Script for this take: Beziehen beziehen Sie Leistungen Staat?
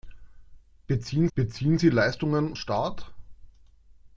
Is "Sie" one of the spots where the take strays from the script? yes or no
no